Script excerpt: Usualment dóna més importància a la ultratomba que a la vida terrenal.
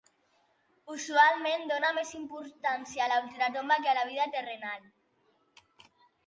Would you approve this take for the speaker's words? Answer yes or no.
yes